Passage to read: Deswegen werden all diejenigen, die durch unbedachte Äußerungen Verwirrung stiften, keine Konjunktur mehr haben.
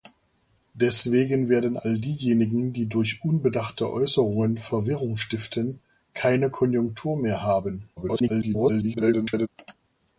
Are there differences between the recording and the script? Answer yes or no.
yes